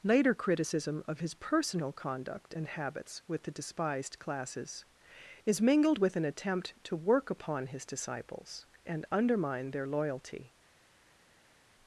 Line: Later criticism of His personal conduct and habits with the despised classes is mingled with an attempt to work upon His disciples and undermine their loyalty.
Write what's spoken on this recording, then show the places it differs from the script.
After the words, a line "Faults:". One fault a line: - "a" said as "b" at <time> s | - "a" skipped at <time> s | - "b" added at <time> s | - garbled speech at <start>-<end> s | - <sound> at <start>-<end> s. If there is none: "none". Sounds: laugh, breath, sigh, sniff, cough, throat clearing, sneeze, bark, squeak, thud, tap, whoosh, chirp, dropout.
Later criticism of His personal conduct and habits with the despised classes is mingled with an attempt to work upon His disciples and undermine their loyalty.
Faults:
none